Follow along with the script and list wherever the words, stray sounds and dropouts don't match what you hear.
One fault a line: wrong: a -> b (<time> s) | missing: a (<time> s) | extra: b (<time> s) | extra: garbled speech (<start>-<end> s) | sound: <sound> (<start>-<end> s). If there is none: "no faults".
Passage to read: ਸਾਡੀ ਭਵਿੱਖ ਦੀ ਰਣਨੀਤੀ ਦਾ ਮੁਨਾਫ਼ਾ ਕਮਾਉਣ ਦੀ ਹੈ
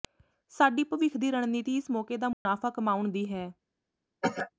extra: ਇਸ ਮੌਕੇ (1.8 s)
sound: dropout (2.3-2.5 s)
sound: cough (4.2-4.5 s)